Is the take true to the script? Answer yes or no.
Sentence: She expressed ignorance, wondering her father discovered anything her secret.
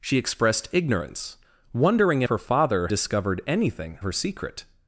yes